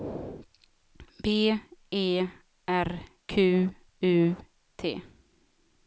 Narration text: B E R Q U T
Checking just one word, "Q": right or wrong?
right